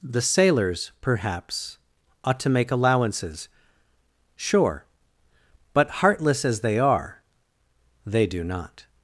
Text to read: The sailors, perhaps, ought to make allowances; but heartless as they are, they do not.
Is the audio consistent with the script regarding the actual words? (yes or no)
no